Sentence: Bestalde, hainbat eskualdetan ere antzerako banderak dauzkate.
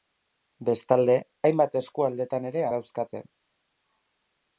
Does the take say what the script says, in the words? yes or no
no